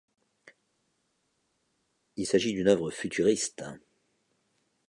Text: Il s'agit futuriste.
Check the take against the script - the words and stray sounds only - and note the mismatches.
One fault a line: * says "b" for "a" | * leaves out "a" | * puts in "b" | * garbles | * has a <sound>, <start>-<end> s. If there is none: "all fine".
* puts in "d'une œuvre"